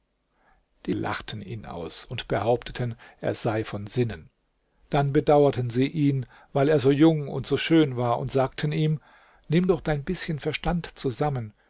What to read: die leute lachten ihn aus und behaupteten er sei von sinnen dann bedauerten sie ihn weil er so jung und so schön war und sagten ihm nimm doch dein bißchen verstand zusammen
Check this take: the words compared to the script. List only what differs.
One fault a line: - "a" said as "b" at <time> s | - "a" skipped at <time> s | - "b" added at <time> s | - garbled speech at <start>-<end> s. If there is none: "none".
- "leute" skipped at 0.9 s